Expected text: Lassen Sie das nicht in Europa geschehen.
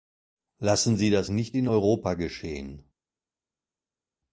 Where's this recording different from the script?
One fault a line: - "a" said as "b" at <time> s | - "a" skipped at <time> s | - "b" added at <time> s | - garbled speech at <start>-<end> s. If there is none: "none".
none